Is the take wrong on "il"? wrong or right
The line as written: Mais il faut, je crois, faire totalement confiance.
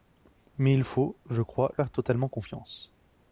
right